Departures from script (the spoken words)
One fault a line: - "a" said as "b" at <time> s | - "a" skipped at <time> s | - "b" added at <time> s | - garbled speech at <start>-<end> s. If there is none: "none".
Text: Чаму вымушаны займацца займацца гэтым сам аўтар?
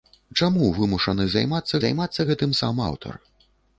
none